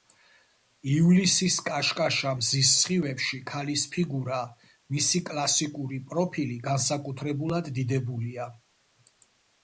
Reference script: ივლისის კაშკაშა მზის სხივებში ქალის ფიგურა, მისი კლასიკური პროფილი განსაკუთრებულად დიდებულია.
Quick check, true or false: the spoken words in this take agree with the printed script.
true